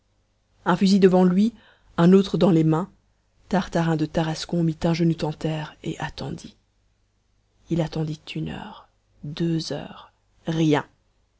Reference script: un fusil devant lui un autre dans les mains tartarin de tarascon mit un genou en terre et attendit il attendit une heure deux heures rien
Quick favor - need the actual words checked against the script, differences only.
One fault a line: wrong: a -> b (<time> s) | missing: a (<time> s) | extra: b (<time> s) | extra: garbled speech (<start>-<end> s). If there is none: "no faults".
no faults